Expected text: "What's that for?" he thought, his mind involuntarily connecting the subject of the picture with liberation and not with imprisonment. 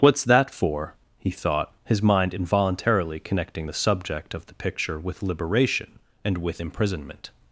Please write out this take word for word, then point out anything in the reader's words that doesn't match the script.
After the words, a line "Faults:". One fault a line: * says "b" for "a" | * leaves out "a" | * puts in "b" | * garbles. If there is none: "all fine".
"What's that for?" he thought, his mind involuntarily connecting the subject of the picture with liberation and with imprisonment.
Faults:
* leaves out "not"